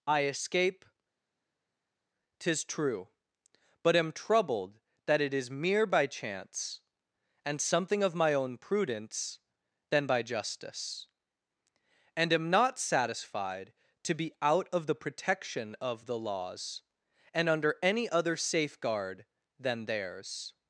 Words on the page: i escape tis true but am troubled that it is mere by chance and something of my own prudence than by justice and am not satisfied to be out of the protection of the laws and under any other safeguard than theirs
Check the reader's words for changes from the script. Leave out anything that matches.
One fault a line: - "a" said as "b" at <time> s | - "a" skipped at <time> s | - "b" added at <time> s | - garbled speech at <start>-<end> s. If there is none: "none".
none